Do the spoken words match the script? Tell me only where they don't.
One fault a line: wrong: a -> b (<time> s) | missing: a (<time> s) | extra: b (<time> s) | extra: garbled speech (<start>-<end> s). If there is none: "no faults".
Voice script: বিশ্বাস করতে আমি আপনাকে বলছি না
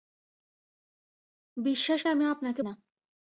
missing: করতে (2.0 s)
missing: বলছি (2.6 s)